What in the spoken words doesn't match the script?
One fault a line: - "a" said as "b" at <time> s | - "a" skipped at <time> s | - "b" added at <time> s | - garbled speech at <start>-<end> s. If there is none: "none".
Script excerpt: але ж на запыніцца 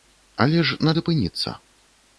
none